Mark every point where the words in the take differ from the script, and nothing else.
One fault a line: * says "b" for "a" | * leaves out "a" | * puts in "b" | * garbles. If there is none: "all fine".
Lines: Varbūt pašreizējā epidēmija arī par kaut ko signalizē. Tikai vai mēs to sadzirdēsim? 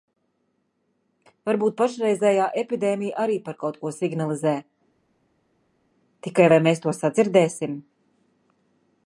all fine